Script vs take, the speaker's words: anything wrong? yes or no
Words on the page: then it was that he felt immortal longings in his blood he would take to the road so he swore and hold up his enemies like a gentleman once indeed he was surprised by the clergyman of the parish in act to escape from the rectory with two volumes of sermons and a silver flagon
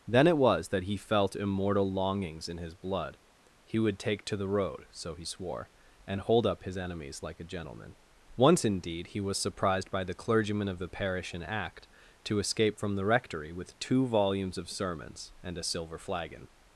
no